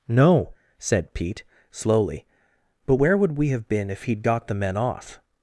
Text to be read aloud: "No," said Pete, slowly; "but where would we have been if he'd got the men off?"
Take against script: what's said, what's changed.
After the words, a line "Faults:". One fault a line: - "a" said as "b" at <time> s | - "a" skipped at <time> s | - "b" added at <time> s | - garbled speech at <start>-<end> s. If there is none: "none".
"No," said Pete, slowly; "but where would we have been if he'd got the men off?"
Faults:
none